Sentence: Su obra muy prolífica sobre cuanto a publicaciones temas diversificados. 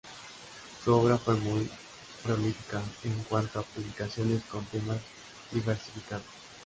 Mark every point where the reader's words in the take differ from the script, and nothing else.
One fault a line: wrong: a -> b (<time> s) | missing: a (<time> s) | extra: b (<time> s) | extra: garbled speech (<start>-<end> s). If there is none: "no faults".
extra: fue (1.2 s)
wrong: sobre -> en (3.0 s)
extra: con (4.5 s)